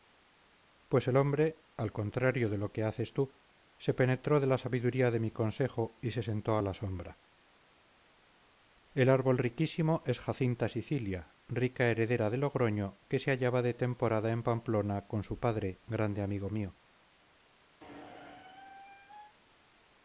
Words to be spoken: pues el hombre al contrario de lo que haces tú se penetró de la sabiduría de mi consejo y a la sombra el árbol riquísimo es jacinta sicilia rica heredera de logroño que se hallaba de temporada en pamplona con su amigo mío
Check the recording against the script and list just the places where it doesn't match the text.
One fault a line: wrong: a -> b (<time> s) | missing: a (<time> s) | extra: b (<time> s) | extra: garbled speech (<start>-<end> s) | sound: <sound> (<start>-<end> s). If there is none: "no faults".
extra: se sentó (6.1 s)
extra: padre grande (15.4 s)
sound: squeak (17.8-19.4 s)